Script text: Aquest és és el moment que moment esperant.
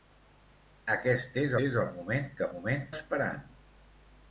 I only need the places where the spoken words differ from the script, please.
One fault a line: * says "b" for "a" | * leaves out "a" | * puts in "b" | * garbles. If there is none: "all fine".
all fine